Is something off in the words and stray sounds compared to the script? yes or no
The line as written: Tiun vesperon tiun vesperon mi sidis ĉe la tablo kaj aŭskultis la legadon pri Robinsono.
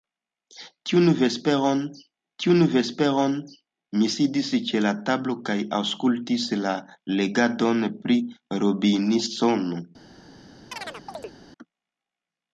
yes